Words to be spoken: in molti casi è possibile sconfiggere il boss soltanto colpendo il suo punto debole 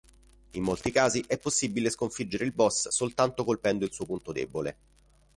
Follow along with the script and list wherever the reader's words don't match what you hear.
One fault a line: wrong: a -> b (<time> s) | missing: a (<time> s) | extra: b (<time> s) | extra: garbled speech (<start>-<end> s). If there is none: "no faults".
no faults